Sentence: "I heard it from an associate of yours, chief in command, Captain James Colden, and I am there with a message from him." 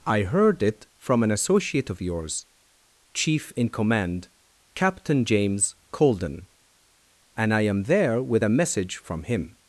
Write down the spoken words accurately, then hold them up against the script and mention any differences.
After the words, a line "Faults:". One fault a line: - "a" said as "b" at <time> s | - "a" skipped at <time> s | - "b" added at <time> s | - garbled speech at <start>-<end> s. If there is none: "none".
"I heard it from an associate of yours, chief in command, Captain James Colden, and I am there with a message from him."
Faults:
none